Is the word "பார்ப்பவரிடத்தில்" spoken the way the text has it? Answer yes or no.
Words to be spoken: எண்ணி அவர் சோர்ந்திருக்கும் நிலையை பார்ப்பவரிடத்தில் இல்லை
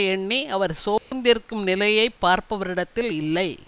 yes